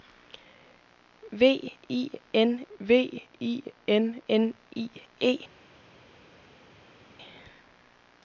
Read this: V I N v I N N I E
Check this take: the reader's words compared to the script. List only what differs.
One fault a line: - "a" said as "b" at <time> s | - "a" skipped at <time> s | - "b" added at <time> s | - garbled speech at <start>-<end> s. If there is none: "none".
none